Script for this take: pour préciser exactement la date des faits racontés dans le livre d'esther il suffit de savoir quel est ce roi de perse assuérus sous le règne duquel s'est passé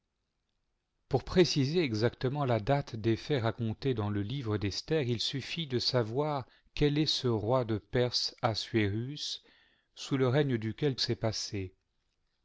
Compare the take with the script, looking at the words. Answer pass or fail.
pass